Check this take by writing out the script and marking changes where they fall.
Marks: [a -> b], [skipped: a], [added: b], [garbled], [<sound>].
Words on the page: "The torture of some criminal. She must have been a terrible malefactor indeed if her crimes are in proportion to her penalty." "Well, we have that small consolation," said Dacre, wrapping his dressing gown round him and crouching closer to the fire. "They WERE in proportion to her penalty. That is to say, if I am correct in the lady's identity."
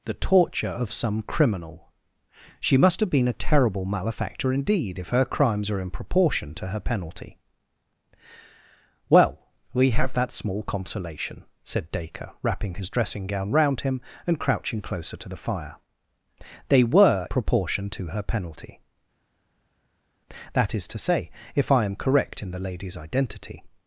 "The torture of some criminal. She must have been a terrible malefactor indeed if her crimes are in proportion to her penalty." "Well, we have that small consolation," said Dacre, wrapping his dressing gown round him and crouching closer to the fire. "They WERE [skipped: in] proportion to her penalty. That is to say, if I am correct in the lady's identity."